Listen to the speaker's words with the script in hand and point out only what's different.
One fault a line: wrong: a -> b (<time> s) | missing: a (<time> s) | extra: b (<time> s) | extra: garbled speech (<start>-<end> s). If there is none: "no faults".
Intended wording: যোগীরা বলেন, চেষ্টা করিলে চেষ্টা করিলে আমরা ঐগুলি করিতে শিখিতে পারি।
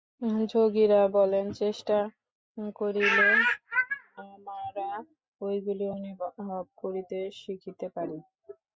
missing: চেষ্টা করিলে (3.3 s)
extra: অনুভব (6.0 s)